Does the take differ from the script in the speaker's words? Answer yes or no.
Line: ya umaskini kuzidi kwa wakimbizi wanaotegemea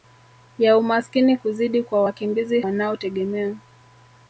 no